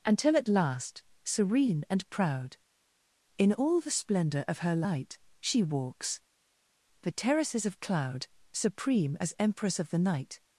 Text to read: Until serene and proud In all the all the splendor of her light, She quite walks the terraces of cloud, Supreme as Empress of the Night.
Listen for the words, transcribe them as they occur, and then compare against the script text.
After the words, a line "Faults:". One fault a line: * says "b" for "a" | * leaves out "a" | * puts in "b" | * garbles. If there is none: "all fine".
Until at last, serene and proud In all the splendor of her light, She walks the terraces of cloud, Supreme as Empress of the Night.
Faults:
* puts in "at last"
* leaves out "all the"
* leaves out "quite"